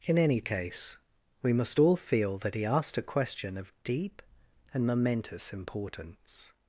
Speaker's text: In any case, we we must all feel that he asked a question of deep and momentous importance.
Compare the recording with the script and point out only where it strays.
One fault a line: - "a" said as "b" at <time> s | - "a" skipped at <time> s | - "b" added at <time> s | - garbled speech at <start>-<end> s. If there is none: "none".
- "we" skipped at 1.5 s